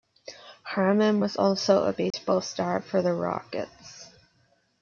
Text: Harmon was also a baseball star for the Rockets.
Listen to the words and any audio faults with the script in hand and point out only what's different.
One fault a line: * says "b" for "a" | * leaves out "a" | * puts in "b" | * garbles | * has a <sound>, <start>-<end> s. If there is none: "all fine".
* has a dropout, 2.1-2.1 s